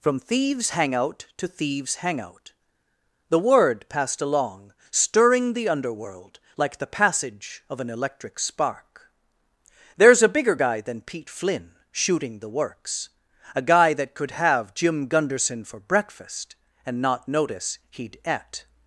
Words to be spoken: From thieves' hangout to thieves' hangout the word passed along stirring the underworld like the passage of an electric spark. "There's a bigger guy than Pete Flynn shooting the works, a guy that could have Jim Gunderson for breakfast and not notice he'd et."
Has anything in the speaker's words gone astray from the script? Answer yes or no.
no